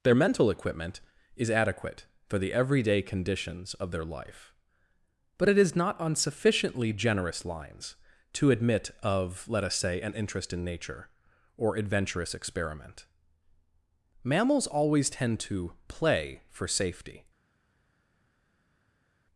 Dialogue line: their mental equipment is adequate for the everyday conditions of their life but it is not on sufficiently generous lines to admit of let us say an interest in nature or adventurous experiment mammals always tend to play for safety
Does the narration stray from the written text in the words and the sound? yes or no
no